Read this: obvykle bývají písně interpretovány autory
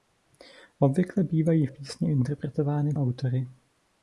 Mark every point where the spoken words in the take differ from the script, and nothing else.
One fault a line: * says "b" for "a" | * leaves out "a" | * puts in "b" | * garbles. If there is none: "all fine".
all fine